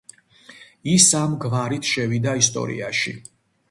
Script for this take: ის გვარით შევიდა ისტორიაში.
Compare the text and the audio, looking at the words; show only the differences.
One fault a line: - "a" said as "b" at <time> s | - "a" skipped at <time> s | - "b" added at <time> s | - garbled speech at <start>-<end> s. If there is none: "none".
- "ამ" added at 1.2 s